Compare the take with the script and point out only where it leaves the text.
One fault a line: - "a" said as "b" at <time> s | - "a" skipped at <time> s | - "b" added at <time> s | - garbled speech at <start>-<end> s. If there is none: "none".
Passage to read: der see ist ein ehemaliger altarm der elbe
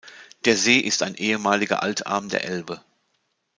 none